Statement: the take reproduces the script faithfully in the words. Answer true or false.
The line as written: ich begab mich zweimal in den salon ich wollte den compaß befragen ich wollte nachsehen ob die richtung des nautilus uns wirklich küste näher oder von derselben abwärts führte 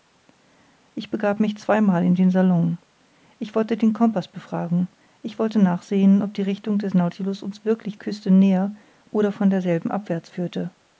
true